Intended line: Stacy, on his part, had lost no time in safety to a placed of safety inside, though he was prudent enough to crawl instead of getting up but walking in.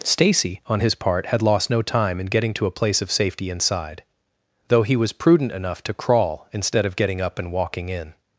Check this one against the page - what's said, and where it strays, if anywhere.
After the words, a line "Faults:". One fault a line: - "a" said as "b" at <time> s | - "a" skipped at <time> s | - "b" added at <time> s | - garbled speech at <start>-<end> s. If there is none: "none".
Stacy, on his part, had lost no time in getting to a place of safety inside, though he was prudent enough to crawl instead of getting up and walking in.
Faults:
- "safety" said as "getting" at 2.3 s
- "placed" said as "place" at 2.7 s
- "but" said as "and" at 7.4 s